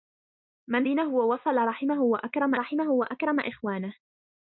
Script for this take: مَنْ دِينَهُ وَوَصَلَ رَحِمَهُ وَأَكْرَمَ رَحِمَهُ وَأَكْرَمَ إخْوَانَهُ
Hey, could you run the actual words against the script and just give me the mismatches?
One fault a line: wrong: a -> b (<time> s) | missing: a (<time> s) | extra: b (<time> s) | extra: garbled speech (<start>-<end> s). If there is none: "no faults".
no faults